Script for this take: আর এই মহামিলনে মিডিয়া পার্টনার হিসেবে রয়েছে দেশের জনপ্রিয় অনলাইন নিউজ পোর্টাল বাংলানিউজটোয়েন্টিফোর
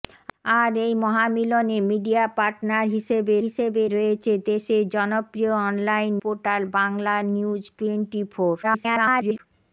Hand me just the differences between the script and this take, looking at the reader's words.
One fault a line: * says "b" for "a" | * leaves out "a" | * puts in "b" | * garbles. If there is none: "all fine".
* puts in "হিসেবে"
* leaves out "নিউজ"
* garbles